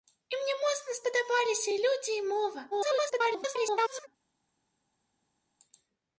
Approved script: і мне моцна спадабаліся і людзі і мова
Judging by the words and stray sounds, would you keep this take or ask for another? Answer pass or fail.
fail